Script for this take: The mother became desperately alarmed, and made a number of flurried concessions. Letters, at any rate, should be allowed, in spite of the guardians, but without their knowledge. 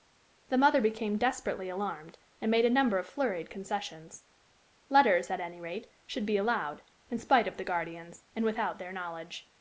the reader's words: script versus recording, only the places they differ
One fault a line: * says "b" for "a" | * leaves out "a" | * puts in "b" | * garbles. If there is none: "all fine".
* says "and" for "but"